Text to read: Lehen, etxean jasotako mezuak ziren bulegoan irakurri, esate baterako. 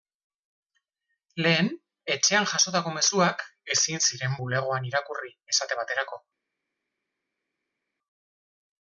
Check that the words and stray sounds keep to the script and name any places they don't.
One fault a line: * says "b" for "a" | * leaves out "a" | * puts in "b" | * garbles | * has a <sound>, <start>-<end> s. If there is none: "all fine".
* puts in "ezin"